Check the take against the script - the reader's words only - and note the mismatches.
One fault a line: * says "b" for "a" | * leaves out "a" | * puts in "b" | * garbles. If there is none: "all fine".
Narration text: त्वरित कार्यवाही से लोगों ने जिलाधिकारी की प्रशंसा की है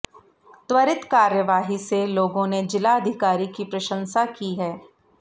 all fine